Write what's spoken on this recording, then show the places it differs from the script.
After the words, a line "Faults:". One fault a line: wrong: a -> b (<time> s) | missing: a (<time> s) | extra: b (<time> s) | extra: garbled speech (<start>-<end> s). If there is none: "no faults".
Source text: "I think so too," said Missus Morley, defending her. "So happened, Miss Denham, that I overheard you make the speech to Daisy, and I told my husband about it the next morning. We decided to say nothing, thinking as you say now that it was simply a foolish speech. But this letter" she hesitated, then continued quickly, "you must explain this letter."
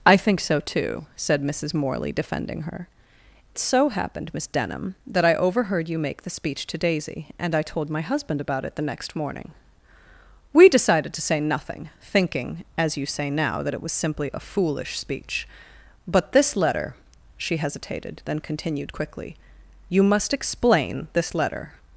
"I think so too," said Missus Morley, defending her. "So happened, Miss Denham, that I overheard you make the speech to Daisy, and I told my husband about it the next morning. We decided to say nothing, thinking as you say now that it was simply a foolish speech. But this letter" she hesitated, then continued quickly, "you must explain this letter."
Faults:
no faults